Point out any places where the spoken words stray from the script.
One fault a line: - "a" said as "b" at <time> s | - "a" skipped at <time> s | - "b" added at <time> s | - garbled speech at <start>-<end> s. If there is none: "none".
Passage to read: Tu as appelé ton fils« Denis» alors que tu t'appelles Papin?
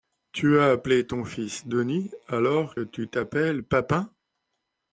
- "que" skipped at 2.8 s